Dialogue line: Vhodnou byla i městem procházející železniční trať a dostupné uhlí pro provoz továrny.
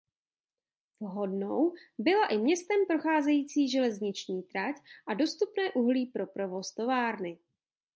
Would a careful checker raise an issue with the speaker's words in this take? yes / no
no